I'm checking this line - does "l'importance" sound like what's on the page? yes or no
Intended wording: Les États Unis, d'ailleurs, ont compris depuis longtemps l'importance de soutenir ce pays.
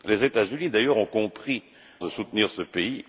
no